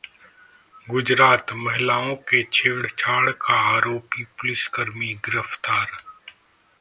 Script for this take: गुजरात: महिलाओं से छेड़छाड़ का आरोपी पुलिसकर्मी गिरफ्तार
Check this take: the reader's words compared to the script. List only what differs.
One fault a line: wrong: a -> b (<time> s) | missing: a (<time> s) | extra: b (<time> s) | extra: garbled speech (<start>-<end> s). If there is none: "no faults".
no faults